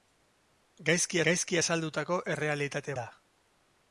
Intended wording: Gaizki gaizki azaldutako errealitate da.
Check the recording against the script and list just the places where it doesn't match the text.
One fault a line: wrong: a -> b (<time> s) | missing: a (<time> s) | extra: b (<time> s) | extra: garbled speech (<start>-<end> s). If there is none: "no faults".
no faults